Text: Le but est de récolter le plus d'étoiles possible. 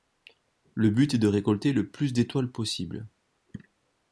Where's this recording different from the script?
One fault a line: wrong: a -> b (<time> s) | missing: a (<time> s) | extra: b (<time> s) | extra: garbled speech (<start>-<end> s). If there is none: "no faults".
no faults